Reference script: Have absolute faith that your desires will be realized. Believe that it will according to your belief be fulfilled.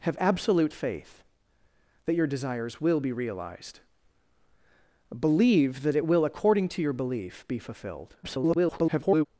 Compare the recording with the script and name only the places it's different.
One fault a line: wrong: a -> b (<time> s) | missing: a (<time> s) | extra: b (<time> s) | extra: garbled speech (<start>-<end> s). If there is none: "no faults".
extra: garbled speech (8.2-9.3 s)